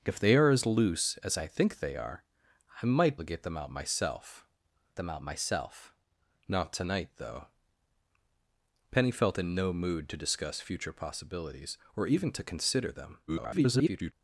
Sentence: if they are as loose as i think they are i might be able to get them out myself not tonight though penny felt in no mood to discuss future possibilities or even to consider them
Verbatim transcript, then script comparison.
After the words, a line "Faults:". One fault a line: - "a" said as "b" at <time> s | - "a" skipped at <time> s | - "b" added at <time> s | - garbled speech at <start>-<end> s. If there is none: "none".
if they are as loose as i think they are i might to get them out myself them out myself not tonight though penny felt in no mood to discuss future possibilities or even to consider them [garbled]
Faults:
- "be able to get" said as "to get them out myself" at 3.2 s
- garbled speech at 13.3-14.1 s